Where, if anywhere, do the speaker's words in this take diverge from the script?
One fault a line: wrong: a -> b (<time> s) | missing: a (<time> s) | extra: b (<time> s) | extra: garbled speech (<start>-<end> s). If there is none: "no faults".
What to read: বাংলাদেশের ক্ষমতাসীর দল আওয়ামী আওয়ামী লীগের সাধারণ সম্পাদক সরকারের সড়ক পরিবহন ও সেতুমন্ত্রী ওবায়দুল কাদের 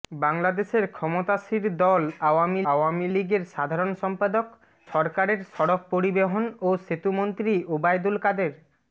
no faults